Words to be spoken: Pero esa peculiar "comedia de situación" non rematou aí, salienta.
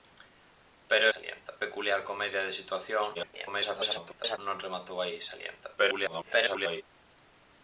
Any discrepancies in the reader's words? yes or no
yes